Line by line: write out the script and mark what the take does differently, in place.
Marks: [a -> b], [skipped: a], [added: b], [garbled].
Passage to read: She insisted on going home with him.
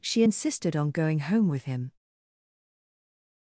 She insisted on going home with him.